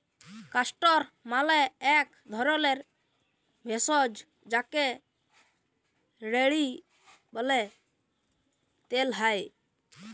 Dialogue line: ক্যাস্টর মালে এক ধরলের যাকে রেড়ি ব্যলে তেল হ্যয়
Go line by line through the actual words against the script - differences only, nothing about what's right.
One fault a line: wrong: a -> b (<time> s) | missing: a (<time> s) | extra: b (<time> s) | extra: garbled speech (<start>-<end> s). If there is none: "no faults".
extra: ভেষজ (3.7 s)